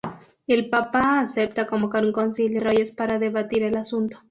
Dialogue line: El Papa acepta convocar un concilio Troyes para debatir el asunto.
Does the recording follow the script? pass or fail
pass